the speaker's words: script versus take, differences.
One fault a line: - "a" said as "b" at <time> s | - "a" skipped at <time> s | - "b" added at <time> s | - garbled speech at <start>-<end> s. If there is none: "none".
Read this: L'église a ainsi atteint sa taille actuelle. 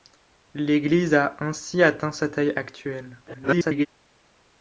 - garbled speech at 3.3-3.9 s